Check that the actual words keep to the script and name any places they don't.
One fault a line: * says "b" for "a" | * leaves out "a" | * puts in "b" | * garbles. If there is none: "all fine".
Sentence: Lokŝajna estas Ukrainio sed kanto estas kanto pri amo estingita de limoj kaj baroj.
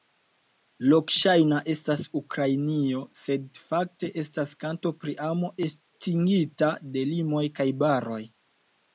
* says "fakte" for "kanto"